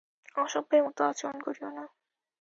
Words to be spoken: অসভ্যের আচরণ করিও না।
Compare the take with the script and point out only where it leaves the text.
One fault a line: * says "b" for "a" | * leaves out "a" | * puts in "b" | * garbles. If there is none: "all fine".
* puts in "মতো"